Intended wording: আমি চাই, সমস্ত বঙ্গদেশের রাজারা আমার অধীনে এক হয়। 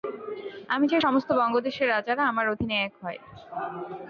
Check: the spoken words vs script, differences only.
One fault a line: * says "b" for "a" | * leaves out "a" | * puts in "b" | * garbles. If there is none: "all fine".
all fine